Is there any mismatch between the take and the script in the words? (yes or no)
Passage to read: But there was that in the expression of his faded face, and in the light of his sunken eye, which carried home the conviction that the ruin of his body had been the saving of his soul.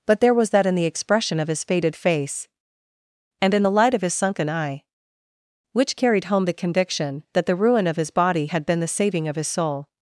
no